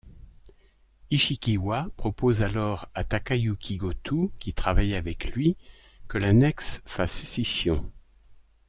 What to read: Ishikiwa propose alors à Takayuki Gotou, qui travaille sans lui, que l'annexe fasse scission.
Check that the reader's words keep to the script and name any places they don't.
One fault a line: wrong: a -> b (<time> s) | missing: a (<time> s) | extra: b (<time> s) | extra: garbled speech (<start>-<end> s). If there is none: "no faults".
wrong: sans -> avec (4.9 s)